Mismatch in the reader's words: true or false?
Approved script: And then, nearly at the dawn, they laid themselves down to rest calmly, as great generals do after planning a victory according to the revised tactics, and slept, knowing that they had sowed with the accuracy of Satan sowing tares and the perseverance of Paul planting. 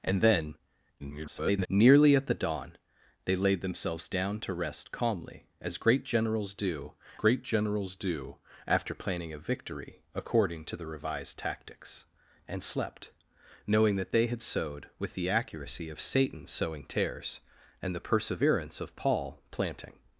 true